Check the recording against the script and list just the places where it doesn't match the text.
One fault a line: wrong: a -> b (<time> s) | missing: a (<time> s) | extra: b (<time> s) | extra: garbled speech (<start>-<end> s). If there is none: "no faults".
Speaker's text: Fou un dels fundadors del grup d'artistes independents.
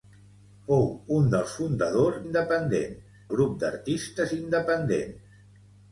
wrong: del -> independents (2.2 s)